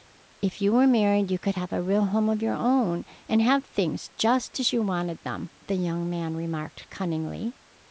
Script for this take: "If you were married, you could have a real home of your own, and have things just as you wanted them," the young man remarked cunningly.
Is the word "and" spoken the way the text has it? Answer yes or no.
yes